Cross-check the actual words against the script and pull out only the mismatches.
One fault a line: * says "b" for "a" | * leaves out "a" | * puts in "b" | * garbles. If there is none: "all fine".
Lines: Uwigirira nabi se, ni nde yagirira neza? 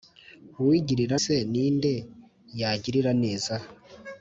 * leaves out "nabi"